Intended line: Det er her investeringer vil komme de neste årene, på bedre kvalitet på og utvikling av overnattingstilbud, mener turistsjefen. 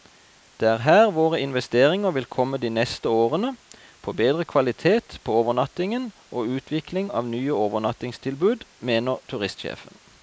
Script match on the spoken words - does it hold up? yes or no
no